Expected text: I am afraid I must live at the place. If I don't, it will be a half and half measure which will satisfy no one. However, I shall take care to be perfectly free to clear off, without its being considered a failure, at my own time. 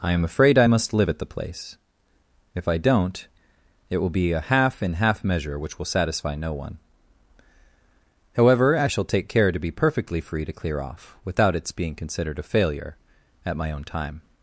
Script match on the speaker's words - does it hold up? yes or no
no